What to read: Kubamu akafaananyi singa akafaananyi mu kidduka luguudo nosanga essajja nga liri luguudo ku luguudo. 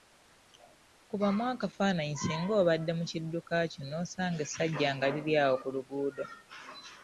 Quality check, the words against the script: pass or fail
fail